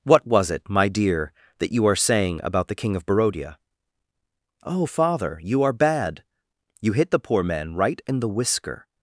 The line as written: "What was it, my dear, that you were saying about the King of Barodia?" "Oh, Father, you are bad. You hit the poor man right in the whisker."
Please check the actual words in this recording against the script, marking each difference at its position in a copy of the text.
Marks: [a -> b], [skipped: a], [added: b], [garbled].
"What was it, my dear, that you [were -> are] saying about the King of Barodia?" "Oh, Father, you are bad. You hit the poor man right in the whisker."